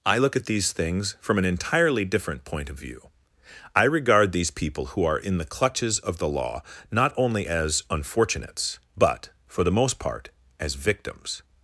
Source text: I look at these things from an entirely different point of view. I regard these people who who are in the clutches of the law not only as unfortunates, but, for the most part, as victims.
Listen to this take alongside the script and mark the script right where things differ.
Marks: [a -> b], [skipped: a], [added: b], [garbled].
I look at these things from an entirely different point of view. I regard these people who [skipped: who] are in the clutches of the law not only as unfortunates, but, for the most part, as victims.